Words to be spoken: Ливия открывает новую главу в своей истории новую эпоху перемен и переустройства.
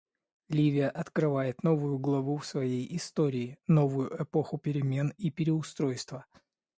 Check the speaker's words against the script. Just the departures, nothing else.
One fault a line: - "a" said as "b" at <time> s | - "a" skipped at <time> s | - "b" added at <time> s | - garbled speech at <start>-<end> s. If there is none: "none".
none